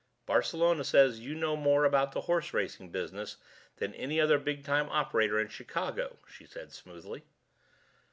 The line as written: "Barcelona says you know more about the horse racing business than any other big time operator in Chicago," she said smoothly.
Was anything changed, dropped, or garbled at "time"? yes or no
no